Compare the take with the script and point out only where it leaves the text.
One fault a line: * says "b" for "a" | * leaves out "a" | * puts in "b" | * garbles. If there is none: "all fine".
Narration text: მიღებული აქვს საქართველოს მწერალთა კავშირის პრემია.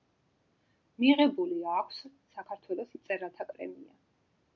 * leaves out "კავშირის"